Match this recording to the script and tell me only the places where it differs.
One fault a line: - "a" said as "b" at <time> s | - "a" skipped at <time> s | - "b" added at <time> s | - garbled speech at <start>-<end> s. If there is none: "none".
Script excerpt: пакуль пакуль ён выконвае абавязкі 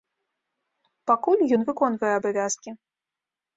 - "пакуль" skipped at 1.4 s